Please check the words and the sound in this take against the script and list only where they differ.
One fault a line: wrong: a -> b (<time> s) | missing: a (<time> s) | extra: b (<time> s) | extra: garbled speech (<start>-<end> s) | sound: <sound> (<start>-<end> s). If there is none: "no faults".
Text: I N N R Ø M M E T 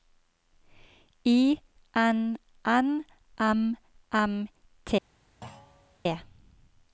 missing: R Ø (3.0 s)
missing: E (4.5 s)
sound: thud (5.4-6.0 s)